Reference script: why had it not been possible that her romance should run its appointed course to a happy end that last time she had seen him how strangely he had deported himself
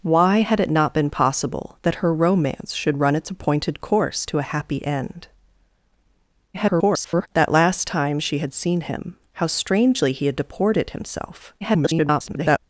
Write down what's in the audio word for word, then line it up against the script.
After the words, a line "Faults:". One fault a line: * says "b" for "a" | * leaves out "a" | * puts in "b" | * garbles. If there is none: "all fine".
why had it not been possible that her romance should run its appointed course to a happy end [garbled] that last time she had seen him how strangely he had deported himself [garbled]
Faults:
* garbles
* garbles